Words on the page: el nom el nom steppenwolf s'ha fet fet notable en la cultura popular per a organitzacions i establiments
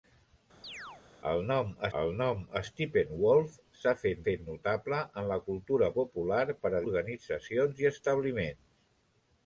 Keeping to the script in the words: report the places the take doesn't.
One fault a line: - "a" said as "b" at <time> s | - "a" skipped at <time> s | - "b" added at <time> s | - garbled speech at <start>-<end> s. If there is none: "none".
none